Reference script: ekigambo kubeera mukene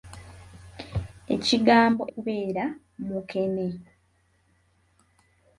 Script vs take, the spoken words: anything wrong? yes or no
no